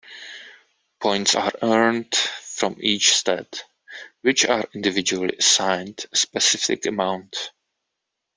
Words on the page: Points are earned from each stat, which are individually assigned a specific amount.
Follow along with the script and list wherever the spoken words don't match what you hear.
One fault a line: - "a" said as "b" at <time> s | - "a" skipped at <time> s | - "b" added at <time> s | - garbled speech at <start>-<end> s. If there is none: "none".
none